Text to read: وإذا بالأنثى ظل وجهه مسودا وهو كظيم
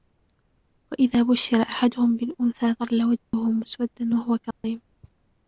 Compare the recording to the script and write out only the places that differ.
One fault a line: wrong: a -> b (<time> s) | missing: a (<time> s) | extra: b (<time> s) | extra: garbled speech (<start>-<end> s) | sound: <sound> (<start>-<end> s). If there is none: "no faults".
extra: بشر أحدهم (1.2 s)
sound: dropout (3.2-3.3 s)
sound: dropout (4.5-4.6 s)